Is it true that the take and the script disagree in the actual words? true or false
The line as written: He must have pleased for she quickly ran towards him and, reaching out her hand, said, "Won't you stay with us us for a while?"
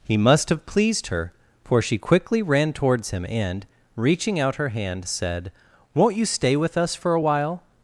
true